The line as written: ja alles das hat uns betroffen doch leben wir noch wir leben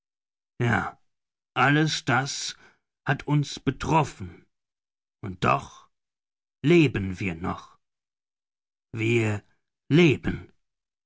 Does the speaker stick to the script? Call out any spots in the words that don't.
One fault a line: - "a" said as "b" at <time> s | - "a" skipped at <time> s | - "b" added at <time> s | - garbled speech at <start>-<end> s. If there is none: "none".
- "und" added at 5.2 s